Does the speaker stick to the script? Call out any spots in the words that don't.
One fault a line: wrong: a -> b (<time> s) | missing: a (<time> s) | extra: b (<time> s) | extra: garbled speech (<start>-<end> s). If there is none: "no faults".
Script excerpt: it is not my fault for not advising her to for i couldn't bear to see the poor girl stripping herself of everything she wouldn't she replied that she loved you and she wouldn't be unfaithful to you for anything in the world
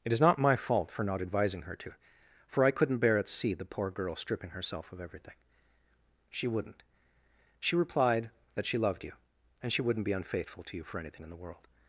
wrong: to -> at (3.2 s)